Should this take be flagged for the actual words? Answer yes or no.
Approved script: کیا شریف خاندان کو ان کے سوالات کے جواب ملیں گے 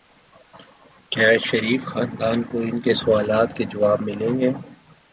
no